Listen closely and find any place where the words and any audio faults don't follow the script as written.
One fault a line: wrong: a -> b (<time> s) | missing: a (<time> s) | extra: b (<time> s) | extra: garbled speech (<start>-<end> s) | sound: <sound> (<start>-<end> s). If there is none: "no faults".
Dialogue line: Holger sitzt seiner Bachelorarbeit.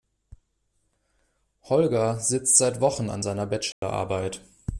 extra: seit Wochen an (2.6 s)
sound: dropout (3.7-3.8 s)